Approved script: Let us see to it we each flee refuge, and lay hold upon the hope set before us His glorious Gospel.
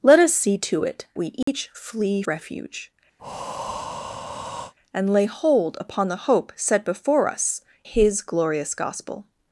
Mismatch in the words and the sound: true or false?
true